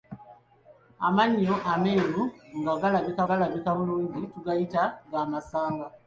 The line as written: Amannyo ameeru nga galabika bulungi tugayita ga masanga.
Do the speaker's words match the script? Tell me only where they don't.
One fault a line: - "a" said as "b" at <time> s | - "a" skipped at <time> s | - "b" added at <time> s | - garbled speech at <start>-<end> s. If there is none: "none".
- "galabika" added at 3.3 s